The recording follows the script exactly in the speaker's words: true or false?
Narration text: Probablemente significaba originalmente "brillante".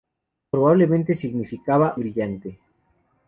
false